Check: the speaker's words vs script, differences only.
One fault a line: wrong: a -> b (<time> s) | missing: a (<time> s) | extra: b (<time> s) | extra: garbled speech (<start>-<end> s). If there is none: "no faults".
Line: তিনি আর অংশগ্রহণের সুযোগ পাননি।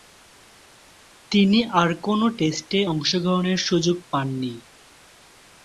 extra: কোন টেস্টে (2.0 s)